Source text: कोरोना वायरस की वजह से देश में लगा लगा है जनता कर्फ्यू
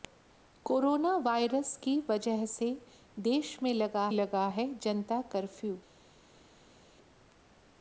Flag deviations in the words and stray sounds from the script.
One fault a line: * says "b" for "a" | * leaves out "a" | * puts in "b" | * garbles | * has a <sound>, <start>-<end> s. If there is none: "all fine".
all fine